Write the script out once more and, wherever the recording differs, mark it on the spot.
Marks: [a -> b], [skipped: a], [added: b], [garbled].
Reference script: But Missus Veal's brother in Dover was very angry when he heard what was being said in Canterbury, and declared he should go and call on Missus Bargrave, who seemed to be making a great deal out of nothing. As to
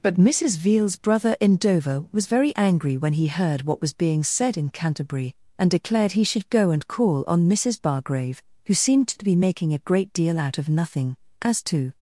But Missus Veal's brother in Dover was very angry when he heard what was being said in Canterbury, and declared he should go and call on Missus Bargrave, who seemed to be making a great deal out of nothing. As to